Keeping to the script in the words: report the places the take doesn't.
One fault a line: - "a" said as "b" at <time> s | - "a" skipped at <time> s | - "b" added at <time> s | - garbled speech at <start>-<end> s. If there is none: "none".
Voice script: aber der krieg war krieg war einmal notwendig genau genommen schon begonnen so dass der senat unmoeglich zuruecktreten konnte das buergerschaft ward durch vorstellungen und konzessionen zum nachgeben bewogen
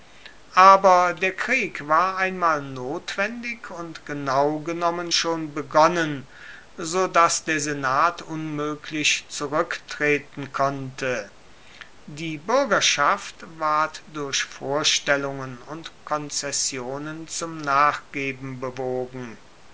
- "krieg war" skipped at 2.2 s
- "und" added at 3.7 s
- "das" said as "die" at 12.0 s